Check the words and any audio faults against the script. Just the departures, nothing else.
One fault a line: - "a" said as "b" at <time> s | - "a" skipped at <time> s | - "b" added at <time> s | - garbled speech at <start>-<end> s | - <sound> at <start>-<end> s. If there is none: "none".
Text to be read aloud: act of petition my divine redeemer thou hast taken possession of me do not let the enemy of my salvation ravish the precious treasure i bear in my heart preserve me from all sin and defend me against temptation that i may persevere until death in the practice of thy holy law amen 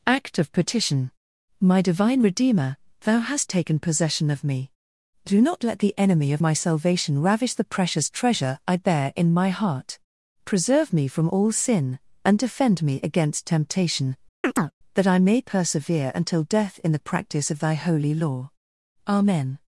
- chirp at 14.4-14.7 s